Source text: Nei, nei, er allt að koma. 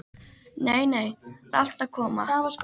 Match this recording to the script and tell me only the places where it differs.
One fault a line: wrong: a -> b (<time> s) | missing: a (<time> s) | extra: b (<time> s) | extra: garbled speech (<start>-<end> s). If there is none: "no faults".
no faults